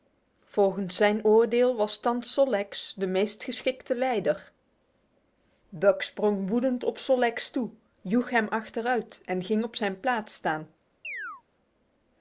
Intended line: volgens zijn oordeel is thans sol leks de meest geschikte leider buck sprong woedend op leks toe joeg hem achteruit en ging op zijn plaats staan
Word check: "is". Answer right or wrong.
wrong